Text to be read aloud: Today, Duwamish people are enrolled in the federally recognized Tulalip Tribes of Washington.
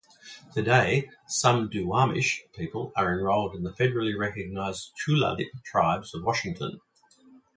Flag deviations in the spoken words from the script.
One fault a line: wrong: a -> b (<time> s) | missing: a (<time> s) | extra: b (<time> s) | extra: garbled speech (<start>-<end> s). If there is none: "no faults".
extra: some (1.3 s)